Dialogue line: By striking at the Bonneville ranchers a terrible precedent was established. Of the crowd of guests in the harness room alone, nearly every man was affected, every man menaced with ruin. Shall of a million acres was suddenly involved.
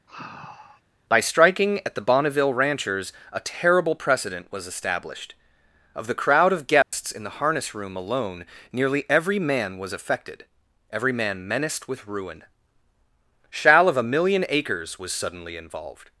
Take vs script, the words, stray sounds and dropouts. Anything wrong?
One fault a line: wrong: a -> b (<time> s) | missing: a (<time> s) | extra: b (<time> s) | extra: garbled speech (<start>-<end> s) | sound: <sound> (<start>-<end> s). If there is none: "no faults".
sound: sigh (0.1-0.8 s)
sound: dropout (6.8-6.9 s)